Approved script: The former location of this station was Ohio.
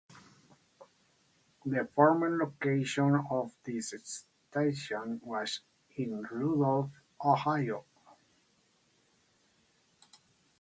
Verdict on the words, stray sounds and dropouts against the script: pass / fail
fail